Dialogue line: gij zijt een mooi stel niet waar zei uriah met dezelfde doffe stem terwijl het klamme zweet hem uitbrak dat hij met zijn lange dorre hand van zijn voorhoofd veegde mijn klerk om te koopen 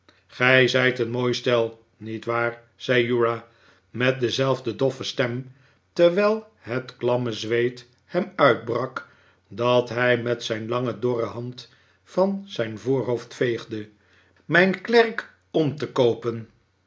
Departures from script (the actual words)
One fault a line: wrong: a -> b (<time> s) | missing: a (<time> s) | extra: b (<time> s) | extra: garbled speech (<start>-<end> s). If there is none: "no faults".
no faults